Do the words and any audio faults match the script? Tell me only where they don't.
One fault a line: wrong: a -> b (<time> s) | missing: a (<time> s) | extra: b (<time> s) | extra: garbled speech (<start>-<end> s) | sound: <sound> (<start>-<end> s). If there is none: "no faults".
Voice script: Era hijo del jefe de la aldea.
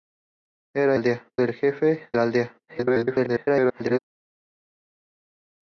wrong: hijo -> aldea (0.9 s)
missing: de (2.1 s)
extra: garbled speech (2.7-4.0 s)